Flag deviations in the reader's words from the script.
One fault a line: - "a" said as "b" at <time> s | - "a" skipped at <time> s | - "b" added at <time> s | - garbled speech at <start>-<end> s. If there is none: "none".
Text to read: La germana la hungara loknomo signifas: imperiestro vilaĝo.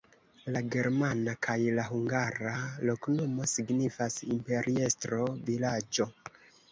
- "kaj" added at 1.5 s